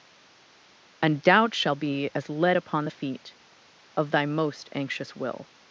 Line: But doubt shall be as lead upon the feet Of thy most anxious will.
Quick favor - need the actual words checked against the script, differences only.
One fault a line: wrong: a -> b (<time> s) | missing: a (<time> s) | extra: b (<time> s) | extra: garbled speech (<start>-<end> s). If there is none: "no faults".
wrong: But -> And (1.0 s)